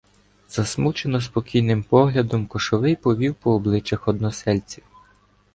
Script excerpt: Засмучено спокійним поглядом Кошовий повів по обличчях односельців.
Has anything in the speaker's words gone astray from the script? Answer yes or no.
no